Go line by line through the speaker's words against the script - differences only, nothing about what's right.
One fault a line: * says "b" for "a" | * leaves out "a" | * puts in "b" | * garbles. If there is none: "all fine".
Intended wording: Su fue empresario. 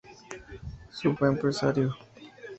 all fine